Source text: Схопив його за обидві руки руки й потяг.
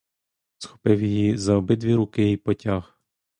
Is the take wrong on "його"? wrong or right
wrong